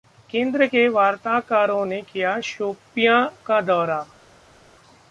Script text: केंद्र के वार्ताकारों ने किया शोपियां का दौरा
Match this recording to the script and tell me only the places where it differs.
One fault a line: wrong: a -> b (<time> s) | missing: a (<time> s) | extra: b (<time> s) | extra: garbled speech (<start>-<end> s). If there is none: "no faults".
no faults